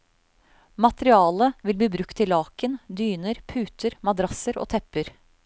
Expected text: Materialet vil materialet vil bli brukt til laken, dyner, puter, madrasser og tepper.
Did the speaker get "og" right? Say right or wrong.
right